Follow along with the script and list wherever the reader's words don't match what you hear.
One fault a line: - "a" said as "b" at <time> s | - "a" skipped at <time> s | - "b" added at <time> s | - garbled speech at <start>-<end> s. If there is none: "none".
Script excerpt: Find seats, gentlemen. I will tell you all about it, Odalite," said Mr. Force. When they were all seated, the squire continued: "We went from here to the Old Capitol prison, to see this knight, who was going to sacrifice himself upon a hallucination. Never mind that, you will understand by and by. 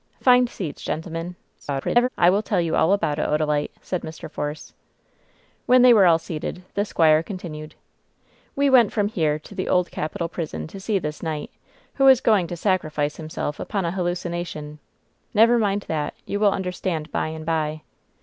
- garbled speech at 1.6-2.1 s